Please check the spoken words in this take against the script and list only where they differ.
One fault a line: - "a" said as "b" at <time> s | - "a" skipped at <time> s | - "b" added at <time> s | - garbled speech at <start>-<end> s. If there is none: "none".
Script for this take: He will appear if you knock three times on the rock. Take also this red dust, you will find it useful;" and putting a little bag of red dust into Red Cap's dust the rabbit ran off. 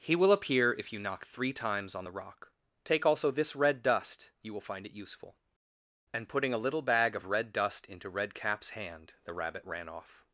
- "dust" said as "hand" at 8.7 s